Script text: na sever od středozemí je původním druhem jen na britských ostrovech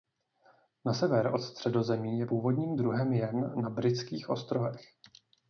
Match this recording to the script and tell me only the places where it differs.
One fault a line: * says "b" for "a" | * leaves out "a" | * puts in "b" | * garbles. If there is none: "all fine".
all fine